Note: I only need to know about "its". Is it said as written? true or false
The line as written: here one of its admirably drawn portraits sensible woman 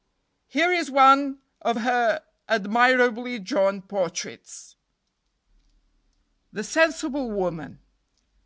false